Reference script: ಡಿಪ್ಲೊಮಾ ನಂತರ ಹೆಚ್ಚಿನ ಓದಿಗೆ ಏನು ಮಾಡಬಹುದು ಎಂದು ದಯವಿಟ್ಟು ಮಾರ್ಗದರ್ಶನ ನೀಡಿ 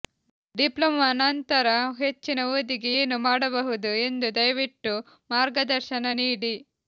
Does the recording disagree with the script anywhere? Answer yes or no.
no